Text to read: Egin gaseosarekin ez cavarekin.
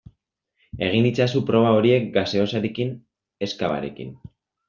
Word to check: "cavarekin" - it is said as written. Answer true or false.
true